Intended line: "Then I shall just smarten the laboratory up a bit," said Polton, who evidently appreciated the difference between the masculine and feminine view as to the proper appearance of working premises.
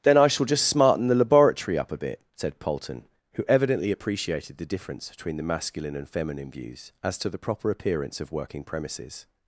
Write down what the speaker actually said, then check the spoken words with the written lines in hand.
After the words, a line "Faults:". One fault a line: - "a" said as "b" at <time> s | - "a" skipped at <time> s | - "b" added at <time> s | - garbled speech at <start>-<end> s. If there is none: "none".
"Then I shall just smarten the laboratory up a bit," said Polton, who evidently appreciated the difference between the masculine and feminine views as to the proper appearance of working premises.
Faults:
- "view" said as "views" at 6.5 s